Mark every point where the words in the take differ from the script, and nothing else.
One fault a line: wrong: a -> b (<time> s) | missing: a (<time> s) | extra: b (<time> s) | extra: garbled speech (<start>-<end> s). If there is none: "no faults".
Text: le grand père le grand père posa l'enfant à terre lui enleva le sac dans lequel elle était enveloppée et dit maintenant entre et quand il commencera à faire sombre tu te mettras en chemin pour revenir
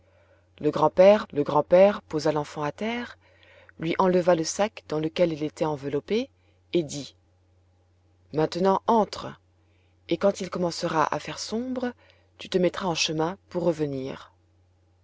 no faults